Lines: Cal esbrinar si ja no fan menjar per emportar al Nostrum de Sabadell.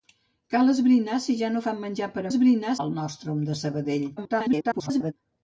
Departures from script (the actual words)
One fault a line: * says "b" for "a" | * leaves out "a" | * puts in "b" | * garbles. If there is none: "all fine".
* says "esbrinar" for "emportar"
* garbles